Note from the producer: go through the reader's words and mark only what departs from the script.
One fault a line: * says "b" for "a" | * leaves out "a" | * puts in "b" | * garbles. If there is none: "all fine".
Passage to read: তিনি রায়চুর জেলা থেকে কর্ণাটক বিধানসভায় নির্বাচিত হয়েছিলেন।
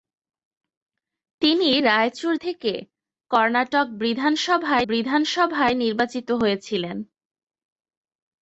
* leaves out "জেলা"
* puts in "বিধানসভায়"